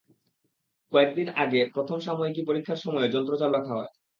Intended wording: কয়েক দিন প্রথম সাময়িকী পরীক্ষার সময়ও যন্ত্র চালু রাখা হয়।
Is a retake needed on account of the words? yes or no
yes